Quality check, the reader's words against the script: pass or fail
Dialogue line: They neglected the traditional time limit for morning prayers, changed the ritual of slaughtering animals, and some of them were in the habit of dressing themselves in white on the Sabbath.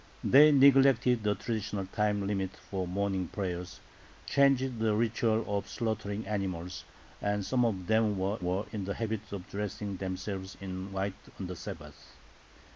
fail